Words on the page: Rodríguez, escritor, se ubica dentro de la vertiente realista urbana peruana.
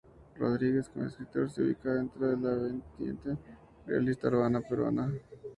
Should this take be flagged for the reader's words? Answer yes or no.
yes